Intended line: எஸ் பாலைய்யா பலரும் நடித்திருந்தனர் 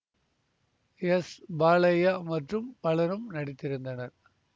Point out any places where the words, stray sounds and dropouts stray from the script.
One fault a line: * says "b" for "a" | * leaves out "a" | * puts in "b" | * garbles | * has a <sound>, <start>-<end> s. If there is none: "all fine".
* puts in "மற்றும்"